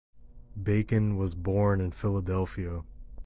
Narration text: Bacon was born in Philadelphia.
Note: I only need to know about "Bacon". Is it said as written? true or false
true